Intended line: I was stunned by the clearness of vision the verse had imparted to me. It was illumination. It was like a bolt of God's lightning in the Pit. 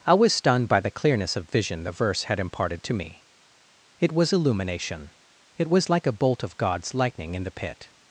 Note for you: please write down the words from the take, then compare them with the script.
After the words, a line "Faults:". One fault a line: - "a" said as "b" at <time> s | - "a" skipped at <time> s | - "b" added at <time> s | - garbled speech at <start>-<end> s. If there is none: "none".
I was stunned by the clearness of vision the verse had imparted to me. It was illumination. It was like a bolt of God's lightning in the Pit.
Faults:
none